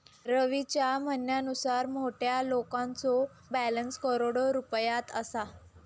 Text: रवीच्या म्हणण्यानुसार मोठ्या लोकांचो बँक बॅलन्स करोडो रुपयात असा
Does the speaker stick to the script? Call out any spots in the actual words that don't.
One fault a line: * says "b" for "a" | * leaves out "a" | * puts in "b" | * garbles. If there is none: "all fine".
* leaves out "बँक"